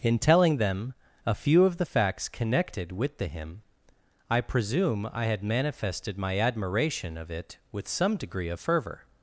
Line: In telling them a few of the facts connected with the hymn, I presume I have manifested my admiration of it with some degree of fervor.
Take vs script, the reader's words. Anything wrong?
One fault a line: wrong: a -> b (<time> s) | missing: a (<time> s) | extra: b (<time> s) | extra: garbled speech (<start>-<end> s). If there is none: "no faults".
wrong: have -> had (5.2 s)